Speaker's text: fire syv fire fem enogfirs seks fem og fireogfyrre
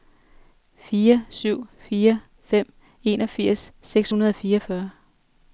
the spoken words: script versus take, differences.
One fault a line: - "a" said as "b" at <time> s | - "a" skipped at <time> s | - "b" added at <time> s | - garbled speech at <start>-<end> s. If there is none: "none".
- "fem" said as "hundrede" at 4.1 s